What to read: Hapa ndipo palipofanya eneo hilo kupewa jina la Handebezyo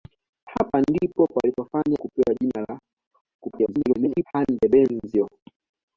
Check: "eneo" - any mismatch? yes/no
yes